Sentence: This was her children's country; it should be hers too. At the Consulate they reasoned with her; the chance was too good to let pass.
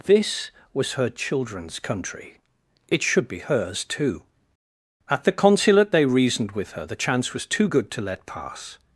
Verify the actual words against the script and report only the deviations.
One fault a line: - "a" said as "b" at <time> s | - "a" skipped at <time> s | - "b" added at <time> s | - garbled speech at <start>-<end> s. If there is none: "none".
none